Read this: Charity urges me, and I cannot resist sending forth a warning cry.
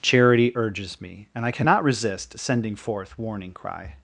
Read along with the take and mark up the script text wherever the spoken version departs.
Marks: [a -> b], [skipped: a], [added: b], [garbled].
Charity urges me, and I cannot resist sending forth [skipped: a] warning cry.